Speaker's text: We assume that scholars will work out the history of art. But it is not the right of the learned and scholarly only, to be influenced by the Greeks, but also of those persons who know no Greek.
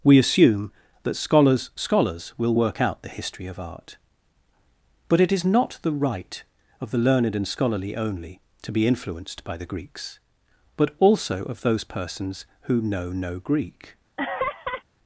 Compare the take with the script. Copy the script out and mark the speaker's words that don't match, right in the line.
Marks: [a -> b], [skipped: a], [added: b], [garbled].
We assume that scholars [added: scholars] will work out the history of art. But it is not the right of the learned and scholarly only, to be influenced by the Greeks, but also of those persons who know no Greek.